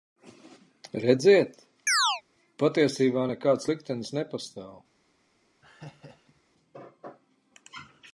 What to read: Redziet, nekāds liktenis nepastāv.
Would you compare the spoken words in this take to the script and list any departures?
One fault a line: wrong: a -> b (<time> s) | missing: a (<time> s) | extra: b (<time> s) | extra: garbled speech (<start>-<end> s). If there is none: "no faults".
extra: patiesībā (2.6 s)